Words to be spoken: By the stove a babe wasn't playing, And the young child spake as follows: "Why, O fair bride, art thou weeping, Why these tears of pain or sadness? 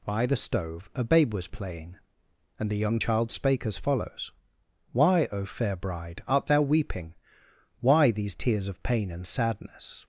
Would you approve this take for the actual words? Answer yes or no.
no